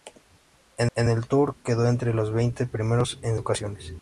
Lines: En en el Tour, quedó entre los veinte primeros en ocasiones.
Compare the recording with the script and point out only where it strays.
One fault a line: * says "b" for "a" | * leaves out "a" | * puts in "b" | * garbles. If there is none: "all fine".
all fine